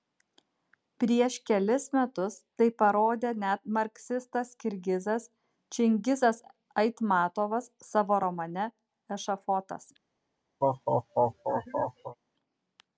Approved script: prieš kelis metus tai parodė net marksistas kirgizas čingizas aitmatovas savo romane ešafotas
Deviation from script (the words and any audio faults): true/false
true